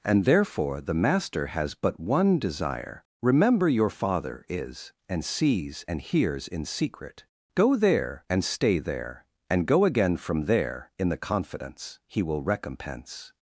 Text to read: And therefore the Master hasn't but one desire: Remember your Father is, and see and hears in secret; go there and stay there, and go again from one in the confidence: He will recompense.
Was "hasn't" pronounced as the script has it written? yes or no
no